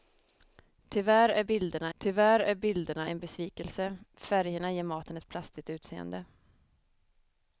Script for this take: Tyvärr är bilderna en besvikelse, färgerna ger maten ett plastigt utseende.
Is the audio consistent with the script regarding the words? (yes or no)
no